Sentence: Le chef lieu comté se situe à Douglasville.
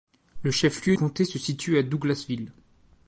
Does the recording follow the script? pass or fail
pass